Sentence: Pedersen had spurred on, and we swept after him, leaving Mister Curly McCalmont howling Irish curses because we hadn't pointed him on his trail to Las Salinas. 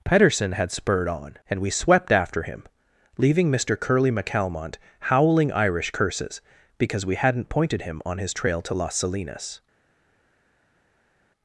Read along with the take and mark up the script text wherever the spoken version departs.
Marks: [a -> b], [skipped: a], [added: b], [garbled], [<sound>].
Pedersen had spurred on, and we swept after him, leaving Mister Curly McCalmont howling Irish curses because we hadn't pointed him on his trail to Las Salinas.